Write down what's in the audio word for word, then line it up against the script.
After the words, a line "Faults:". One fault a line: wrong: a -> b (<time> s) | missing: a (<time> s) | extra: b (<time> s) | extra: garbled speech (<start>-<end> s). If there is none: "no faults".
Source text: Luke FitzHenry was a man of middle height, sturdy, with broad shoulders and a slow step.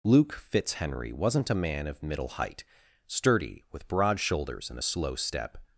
Luke FitzHenry wasn't a man of middle height, sturdy, with broad shoulders and a slow step.
Faults:
wrong: was -> wasn't (1.1 s)